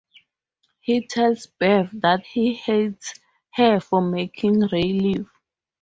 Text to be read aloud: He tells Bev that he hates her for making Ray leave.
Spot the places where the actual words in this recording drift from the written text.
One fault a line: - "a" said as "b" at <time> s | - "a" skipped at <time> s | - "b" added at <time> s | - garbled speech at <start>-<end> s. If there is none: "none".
none